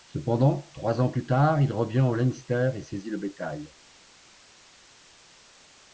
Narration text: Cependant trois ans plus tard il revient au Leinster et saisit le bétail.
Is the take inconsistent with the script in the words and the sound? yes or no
no